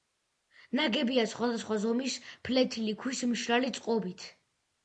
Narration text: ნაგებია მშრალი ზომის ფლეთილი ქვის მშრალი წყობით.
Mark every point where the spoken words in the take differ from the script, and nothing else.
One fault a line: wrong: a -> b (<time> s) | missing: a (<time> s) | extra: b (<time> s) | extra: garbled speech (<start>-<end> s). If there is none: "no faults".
wrong: მშრალი -> სხვადასხვა (1.3 s)